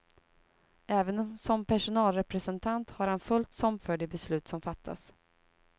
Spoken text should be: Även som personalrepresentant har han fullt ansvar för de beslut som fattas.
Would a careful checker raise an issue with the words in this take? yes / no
yes